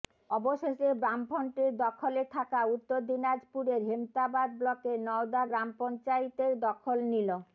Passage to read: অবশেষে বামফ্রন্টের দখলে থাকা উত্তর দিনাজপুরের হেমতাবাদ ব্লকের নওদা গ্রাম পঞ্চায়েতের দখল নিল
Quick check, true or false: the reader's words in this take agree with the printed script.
true